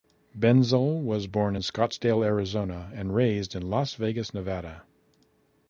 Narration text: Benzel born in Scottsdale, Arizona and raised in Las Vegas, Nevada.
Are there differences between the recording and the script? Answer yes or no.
yes